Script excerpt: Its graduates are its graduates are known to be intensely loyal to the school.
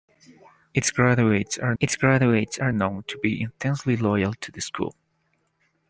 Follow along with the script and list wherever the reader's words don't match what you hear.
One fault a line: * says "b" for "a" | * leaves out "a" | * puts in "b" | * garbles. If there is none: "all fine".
all fine